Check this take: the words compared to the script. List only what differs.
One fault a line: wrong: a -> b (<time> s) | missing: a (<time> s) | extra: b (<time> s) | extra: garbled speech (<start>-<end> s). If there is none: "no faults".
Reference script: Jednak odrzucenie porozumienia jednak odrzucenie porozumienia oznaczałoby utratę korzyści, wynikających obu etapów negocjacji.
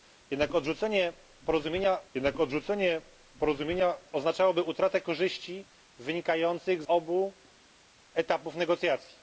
no faults